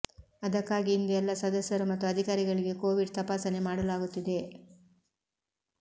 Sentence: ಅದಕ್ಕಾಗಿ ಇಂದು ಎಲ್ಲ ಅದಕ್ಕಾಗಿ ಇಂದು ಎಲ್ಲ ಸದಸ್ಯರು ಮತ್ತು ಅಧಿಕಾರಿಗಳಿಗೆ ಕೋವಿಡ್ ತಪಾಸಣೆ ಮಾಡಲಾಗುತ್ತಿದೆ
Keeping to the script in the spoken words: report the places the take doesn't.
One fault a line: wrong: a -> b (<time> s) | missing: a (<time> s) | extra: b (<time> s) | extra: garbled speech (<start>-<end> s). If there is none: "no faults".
missing: ಅದಕ್ಕಾಗಿ ಇಂದು ಎಲ್ಲ (1.3 s)